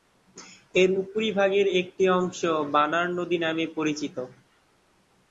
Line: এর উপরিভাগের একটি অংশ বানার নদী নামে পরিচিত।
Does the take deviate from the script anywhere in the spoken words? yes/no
no